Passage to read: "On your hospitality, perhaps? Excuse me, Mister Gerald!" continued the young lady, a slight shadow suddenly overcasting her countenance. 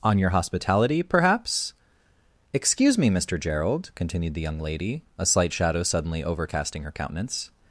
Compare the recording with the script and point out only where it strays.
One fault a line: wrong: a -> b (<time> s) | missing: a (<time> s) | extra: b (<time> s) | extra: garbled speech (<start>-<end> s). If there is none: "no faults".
no faults